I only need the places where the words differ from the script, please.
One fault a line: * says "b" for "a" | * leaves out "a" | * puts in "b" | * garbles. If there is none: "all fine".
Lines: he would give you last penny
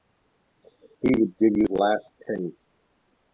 all fine